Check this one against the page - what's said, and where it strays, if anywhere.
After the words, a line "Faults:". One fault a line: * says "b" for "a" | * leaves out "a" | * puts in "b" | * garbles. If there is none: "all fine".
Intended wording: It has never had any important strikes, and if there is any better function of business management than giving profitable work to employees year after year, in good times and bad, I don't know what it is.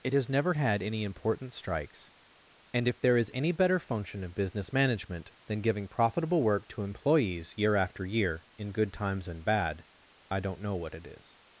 It has never had any important strikes, and if there is any better function of business management than giving profitable work to employees year after year, in good times and bad, I don't know what it is.
Faults:
all fine